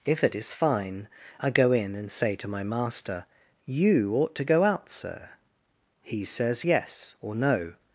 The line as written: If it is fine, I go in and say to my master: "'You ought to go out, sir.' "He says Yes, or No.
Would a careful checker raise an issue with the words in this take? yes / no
no